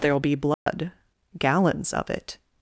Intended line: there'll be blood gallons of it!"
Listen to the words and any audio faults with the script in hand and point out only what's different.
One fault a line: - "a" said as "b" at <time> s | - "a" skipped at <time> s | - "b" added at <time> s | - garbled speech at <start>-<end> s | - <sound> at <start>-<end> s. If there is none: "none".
- dropout at 0.5-0.7 s